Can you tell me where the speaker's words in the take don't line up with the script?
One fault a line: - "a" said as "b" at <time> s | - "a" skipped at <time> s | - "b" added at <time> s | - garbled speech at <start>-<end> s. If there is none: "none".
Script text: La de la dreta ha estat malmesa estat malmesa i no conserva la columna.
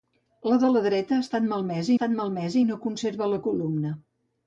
none